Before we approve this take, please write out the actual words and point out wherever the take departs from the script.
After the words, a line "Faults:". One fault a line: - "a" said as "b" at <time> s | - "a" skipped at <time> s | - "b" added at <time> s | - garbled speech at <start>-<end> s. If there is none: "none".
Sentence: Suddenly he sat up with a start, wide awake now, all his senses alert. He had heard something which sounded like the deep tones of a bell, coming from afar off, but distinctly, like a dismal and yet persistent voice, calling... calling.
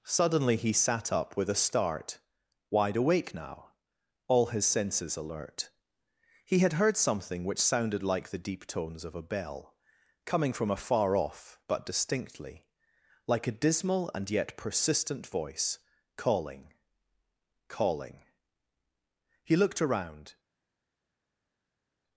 Suddenly he sat up with a start, wide awake now, all his senses alert. He had heard something which sounded like the deep tones of a bell, coming from afar off, but distinctly, like a dismal and yet persistent voice, calling... calling. He looked around
Faults:
- "He looked around" added at 19.4 s